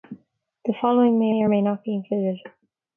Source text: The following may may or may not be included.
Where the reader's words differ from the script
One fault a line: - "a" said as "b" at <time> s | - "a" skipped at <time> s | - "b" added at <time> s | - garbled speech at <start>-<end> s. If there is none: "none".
none